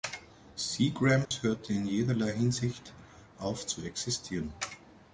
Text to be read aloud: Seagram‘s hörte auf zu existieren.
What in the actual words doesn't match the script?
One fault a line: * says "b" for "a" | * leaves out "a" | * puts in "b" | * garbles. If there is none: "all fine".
* puts in "in jederlei Hinsicht"